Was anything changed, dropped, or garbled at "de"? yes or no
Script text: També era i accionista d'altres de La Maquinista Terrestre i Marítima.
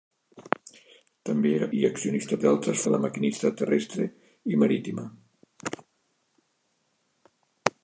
no